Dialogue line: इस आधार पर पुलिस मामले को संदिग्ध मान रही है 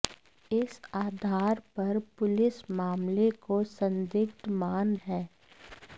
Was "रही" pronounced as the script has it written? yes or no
no